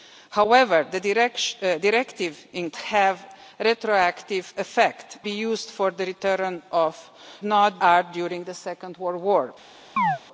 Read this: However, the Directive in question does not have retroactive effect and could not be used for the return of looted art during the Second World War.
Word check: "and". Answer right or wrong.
wrong